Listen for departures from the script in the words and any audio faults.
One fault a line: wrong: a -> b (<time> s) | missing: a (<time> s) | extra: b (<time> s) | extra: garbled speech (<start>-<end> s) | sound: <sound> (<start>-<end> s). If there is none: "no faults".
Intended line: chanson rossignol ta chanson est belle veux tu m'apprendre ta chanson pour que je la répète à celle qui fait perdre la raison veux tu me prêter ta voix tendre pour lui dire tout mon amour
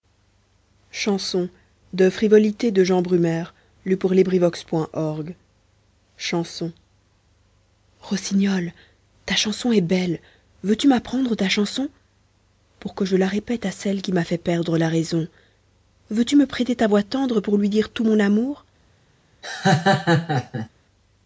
extra: m'a (14.1 s)
sound: laugh (19.4-20.7 s)